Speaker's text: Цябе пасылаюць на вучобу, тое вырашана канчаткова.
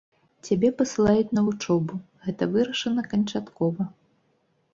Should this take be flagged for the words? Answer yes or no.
yes